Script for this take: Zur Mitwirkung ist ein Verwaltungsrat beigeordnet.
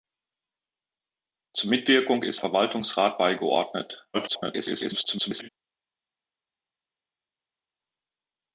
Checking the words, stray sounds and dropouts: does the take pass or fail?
fail